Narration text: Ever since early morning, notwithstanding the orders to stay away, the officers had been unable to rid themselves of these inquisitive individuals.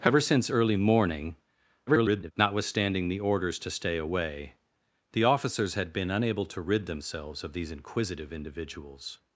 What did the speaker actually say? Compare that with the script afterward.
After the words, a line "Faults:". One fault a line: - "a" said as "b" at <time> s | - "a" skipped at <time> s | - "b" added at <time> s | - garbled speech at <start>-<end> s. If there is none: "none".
Ever since early morning, [garbled] notwithstanding the orders to stay away, the officers had been unable to rid themselves of these inquisitive individuals.
Faults:
- garbled speech at 1.9-2.3 s